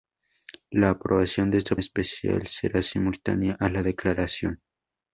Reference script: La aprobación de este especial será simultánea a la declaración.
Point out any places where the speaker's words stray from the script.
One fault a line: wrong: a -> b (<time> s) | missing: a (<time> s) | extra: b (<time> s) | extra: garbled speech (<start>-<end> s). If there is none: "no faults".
no faults